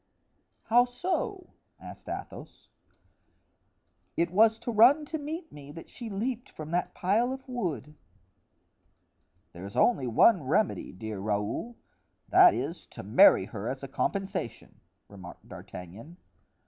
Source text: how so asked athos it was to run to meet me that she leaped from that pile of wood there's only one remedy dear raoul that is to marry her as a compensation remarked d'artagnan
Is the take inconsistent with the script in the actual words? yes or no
no